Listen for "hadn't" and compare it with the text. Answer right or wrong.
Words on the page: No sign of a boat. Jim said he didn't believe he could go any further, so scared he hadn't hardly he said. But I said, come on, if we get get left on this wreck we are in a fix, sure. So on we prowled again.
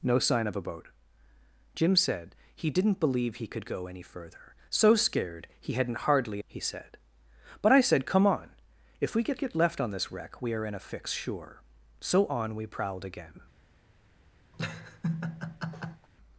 right